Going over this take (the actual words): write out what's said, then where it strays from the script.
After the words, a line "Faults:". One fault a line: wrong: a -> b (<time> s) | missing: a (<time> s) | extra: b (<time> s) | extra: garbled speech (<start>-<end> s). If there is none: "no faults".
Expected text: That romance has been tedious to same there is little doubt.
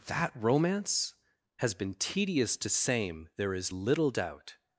That romance has been tedious to same there is little doubt.
Faults:
no faults